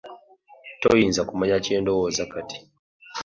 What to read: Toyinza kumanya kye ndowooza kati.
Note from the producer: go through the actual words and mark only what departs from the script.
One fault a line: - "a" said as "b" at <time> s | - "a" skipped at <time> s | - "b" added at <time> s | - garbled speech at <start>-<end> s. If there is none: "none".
none